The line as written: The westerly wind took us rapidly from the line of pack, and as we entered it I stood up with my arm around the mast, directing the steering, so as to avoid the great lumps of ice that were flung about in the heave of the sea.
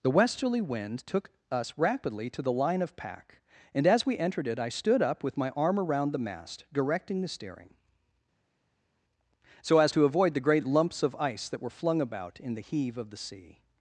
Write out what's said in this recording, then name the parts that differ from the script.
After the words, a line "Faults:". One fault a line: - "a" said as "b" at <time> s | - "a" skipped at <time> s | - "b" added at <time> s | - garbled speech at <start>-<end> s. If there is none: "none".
The westerly wind took us rapidly to the line of pack, and as we entered it I stood up with my arm around the mast, directing the steering, so as to avoid the great lumps of ice that were flung about in the heave of the sea.
Faults:
- "from" said as "to" at 2.3 s